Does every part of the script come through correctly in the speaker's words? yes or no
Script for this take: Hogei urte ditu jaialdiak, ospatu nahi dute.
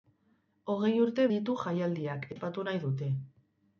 yes